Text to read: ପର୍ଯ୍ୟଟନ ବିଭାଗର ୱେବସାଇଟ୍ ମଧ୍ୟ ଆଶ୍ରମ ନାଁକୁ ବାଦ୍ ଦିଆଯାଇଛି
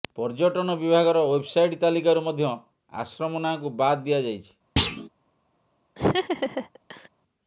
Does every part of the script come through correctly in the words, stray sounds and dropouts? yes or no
no